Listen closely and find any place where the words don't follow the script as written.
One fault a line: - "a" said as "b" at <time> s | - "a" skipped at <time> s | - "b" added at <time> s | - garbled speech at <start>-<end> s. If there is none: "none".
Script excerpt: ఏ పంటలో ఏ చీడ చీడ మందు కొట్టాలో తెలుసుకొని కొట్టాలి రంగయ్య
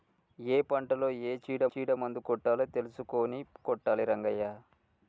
none